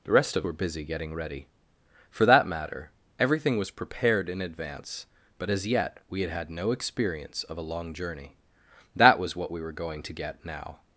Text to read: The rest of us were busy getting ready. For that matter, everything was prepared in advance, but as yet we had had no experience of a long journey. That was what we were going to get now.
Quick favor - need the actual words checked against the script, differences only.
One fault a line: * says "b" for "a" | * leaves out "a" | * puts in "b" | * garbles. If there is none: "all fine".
* leaves out "us"